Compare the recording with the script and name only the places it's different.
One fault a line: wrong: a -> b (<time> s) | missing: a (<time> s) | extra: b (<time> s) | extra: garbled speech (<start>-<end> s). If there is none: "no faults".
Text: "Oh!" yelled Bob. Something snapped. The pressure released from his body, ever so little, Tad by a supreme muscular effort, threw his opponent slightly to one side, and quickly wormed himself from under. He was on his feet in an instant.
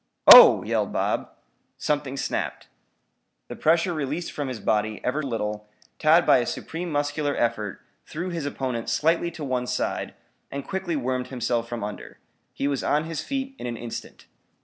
missing: so (5.2 s)